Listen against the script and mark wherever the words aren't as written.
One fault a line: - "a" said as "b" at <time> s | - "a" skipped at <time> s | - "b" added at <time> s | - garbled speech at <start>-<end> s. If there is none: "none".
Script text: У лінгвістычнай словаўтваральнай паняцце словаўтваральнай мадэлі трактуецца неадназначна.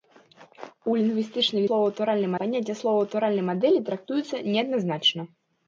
none